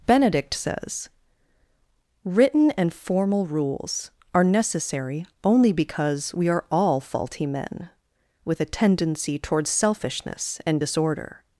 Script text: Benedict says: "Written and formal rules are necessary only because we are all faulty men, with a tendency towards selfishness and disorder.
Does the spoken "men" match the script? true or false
true